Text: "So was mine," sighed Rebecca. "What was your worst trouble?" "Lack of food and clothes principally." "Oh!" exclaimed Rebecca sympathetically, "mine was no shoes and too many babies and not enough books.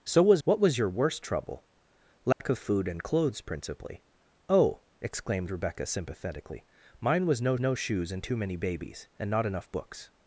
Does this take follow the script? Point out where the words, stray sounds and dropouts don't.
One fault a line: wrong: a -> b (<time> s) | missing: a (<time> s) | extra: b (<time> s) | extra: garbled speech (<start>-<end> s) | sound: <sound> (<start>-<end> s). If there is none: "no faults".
missing: mine sighed Rebecca (0.4 s)
sound: dropout (2.3-2.4 s)
extra: no (7.6 s)